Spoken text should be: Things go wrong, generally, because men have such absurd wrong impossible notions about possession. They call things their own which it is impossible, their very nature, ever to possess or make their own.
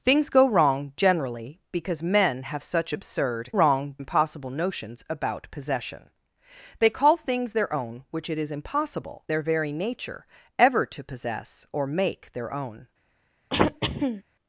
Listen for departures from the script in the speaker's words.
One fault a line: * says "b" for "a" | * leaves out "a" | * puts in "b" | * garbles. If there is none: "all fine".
all fine